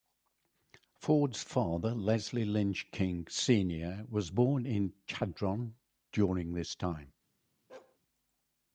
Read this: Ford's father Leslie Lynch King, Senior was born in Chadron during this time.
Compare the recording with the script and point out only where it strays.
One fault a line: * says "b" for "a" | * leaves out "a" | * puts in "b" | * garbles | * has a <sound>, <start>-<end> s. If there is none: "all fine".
* has a bark, 7.7-8.0 s